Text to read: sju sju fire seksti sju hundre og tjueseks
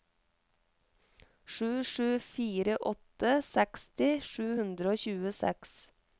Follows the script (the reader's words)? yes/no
no